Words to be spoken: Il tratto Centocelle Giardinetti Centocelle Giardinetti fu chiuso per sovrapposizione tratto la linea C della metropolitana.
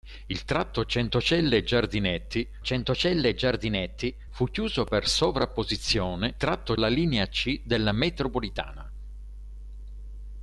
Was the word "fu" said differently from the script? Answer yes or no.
no